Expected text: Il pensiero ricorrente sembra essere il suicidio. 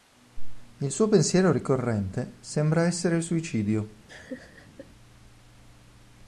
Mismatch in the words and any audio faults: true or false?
true